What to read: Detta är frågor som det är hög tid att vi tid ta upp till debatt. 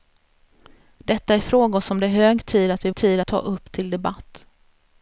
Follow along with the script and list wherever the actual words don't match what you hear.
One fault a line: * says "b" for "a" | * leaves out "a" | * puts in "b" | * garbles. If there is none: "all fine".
all fine